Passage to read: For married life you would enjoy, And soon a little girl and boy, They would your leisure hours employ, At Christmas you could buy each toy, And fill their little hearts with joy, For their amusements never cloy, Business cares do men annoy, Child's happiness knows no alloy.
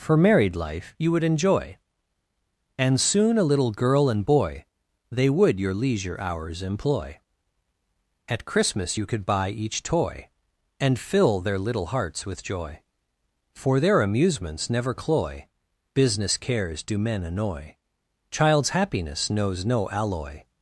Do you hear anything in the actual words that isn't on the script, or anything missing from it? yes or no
no